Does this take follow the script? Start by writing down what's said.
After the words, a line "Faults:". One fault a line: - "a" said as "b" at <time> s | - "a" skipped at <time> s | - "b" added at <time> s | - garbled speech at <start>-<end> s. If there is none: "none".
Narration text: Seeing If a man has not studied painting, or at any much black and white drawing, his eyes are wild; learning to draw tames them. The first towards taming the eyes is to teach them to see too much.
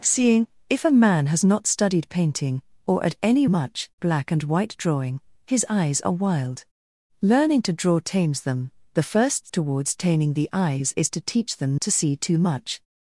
Seeing If a man has not studied painting, or at any much black and white drawing, his eyes are wild; learning to draw tames them. The first towards taming the eyes is to teach them to see too much.
Faults:
none